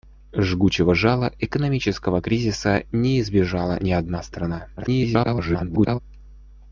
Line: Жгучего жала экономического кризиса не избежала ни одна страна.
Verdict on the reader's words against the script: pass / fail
fail